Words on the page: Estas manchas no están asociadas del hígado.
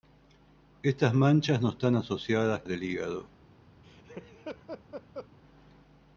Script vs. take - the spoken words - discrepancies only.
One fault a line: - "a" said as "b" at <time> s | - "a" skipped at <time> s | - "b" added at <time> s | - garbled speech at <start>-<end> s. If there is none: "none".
none